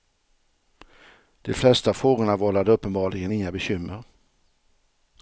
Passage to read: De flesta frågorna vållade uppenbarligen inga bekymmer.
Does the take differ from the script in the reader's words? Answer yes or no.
no